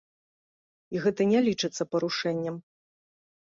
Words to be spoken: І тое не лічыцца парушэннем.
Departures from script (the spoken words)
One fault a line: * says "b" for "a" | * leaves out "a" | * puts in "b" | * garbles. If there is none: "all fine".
* says "гэта" for "тое"